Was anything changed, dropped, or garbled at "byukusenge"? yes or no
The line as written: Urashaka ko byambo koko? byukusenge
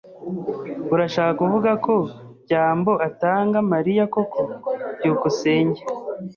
no